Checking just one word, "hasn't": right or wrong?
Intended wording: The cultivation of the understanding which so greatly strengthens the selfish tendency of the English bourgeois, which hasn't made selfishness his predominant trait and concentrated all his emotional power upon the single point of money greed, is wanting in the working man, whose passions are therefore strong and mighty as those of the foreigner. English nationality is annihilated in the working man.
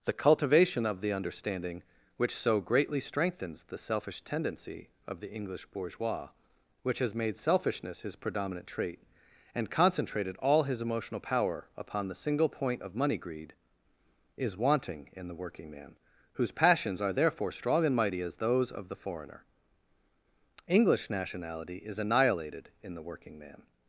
wrong